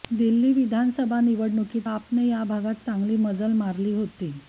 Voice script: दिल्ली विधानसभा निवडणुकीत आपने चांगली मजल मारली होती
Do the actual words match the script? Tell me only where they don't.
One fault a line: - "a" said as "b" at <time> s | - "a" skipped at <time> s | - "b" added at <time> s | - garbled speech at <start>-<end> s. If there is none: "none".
- "या भागात" added at 2.3 s